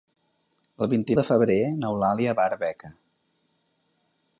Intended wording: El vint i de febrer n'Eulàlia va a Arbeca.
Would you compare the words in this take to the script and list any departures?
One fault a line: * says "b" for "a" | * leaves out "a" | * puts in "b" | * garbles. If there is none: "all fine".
all fine